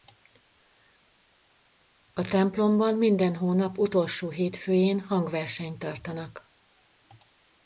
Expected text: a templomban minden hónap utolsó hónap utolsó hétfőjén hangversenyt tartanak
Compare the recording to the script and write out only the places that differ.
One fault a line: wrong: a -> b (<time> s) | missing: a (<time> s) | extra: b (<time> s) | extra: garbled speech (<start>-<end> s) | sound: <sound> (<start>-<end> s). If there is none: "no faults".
missing: hónap utolsó (4.3 s)